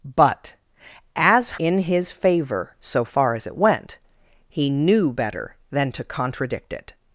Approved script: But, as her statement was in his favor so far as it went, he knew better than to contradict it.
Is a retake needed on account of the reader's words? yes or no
yes